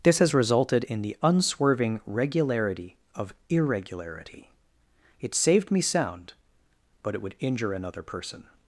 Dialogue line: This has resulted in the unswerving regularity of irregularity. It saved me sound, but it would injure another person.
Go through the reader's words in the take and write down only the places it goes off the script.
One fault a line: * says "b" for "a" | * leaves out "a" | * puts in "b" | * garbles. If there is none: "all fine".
all fine